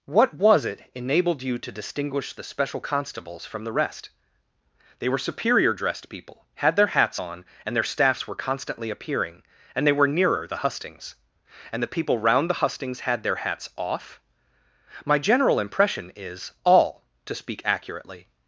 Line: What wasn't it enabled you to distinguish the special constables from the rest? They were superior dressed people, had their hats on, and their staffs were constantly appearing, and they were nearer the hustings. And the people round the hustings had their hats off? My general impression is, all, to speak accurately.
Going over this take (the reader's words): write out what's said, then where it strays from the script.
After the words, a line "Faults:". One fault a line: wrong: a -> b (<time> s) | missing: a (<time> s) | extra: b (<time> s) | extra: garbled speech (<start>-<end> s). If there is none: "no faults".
What was it enabled you to distinguish the special constables from the rest? They were superior dressed people, had their hats on, and their staffs were constantly appearing, and they were nearer the hustings. And the people round the hustings had their hats off? My general impression is, all, to speak accurately.
Faults:
wrong: wasn't -> was (0.3 s)